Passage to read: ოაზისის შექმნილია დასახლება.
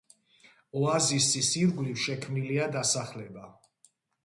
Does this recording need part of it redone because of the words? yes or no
yes